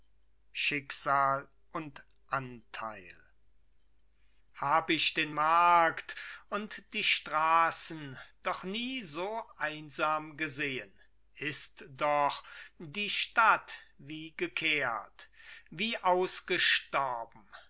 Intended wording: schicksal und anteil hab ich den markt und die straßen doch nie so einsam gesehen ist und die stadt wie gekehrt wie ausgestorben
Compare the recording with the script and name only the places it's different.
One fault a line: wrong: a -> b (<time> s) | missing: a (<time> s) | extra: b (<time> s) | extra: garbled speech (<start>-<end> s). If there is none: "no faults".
wrong: und -> doch (11.9 s)